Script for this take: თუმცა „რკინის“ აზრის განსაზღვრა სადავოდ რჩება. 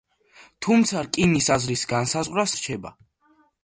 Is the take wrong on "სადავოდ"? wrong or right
wrong